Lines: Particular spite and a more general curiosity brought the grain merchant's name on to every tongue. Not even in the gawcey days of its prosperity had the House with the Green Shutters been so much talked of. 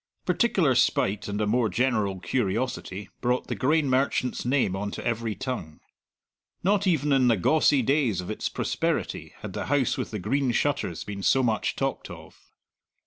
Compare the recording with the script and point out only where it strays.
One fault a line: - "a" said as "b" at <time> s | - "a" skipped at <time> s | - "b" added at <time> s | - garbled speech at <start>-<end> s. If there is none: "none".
none